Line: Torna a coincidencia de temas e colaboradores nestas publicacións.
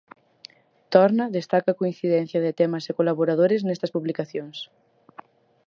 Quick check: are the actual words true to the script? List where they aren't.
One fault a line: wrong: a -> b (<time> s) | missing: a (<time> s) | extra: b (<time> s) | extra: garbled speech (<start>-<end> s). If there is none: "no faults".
extra: destaca (1.4 s)